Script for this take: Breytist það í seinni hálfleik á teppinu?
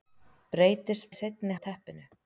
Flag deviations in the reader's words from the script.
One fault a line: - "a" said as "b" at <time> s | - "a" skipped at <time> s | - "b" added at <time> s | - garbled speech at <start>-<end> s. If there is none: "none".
- "það" skipped at 1.1 s
- "hálfleik" skipped at 1.6 s